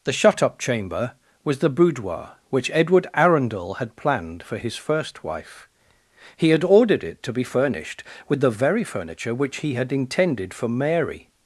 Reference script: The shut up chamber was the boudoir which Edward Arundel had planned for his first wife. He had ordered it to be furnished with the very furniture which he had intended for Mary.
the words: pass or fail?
pass